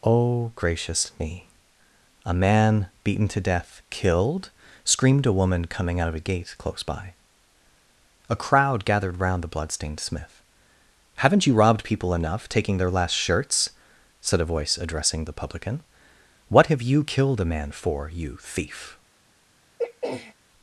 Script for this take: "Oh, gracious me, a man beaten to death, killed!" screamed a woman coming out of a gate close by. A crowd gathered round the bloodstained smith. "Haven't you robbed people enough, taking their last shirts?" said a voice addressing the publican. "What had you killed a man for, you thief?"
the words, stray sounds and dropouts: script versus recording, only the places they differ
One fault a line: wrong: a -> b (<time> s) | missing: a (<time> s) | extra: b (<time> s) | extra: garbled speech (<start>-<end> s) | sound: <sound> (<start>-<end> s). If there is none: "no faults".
wrong: had -> have (16.7 s)
sound: throat clearing (19.8-20.3 s)